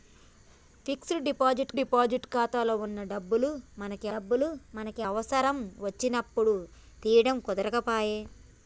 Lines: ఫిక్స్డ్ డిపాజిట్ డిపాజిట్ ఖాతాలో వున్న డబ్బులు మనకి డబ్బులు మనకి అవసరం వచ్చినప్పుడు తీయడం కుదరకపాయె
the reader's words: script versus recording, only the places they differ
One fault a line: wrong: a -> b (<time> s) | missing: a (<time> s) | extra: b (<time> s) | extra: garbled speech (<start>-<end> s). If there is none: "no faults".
no faults